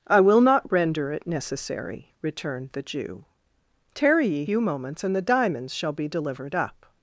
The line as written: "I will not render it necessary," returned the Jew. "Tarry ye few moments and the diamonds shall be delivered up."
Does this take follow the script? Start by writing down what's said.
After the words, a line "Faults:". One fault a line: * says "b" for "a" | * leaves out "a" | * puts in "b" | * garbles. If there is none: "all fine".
"I will not render it necessary," returned the Jew. "Tarry ye few moments and the diamonds shall be delivered up."
Faults:
all fine